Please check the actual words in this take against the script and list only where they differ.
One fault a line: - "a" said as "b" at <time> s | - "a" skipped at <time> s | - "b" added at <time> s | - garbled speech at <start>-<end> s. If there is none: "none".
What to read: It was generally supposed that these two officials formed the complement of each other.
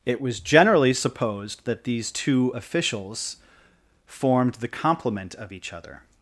none